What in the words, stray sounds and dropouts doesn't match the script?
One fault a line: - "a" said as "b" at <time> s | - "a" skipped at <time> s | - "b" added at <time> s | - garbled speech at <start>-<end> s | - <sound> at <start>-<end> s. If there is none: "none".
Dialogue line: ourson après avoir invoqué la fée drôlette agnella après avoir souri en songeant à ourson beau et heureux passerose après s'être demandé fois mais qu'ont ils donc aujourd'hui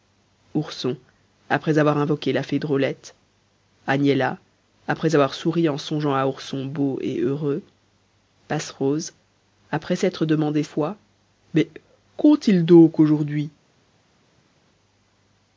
none